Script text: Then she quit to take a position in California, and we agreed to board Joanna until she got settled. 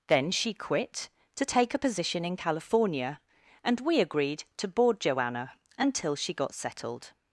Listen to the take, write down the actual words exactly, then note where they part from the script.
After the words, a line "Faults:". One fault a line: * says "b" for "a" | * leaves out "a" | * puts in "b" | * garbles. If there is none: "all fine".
Then she quit to take a position in California, and we agreed to board Joanna until she got settled.
Faults:
all fine